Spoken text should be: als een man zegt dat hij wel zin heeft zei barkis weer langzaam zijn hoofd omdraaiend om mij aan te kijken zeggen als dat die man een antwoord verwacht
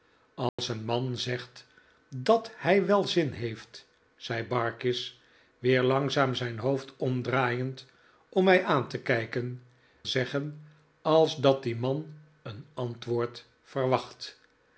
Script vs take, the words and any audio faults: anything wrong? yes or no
yes